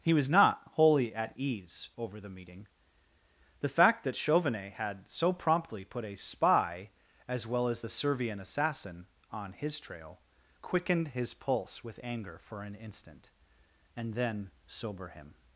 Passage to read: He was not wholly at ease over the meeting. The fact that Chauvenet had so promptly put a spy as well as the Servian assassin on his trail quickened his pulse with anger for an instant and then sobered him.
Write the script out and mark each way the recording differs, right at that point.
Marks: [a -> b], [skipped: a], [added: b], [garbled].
He was not wholly at ease over the meeting. The fact that Chauvenet had so promptly put a spy as well as the Servian assassin on his trail quickened his pulse with anger for an instant and then [sobered -> sober] him.